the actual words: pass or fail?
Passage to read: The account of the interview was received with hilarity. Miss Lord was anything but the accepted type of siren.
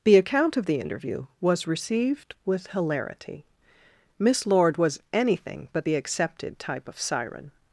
pass